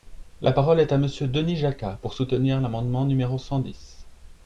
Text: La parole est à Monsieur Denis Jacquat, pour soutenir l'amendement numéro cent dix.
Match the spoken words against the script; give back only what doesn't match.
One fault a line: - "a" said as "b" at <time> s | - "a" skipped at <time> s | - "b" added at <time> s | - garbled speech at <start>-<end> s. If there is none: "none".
none